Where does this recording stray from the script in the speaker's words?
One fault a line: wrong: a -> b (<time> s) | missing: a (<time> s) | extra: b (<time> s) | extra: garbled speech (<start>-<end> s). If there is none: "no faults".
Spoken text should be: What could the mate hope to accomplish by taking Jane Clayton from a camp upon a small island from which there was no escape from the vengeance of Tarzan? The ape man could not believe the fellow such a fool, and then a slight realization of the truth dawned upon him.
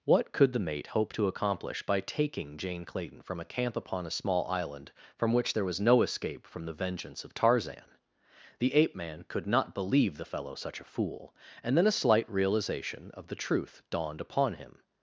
no faults